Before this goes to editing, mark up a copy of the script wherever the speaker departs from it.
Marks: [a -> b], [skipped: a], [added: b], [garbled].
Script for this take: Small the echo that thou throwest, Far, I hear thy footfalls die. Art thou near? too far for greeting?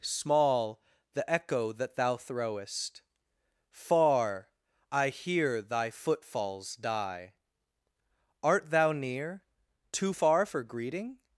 Small the echo that thou throwest, Far, I hear thy footfalls die. Art thou near? too far for greeting?